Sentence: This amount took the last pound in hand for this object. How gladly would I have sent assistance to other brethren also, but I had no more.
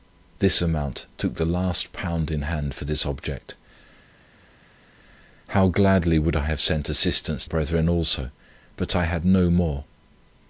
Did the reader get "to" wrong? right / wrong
wrong